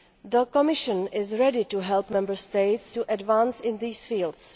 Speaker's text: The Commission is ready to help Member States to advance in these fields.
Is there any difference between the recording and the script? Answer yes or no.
no